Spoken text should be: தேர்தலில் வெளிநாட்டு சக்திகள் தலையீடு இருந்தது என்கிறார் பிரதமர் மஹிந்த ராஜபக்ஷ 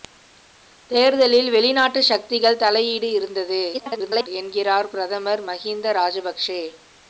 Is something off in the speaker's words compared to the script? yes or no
yes